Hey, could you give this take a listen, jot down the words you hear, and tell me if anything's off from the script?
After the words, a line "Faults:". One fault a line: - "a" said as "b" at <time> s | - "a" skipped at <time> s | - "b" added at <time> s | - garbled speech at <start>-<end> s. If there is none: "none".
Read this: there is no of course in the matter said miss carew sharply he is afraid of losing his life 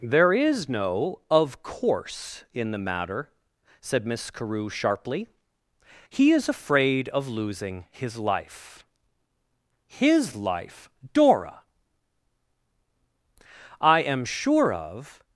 there is no of course in the matter said miss carew sharply he is afraid of losing his life his life dora i am sure of
Faults:
- "his life dora i am sure of" added at 9.9 s